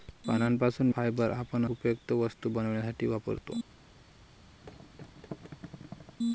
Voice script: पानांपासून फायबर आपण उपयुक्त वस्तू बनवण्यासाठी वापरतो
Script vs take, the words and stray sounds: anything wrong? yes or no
yes